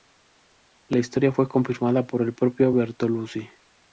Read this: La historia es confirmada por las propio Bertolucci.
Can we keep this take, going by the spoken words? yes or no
no